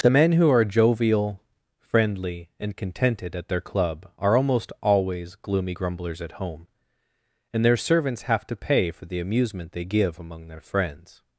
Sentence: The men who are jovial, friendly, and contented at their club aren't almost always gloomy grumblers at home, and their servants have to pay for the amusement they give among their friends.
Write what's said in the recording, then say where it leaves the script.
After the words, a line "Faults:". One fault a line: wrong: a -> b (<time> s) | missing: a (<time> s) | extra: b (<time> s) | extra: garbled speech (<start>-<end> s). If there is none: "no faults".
The men who are jovial, friendly, and contented at their club are almost always gloomy grumblers at home, and their servants have to pay for the amusement they give among their friends.
Faults:
wrong: aren't -> are (4.2 s)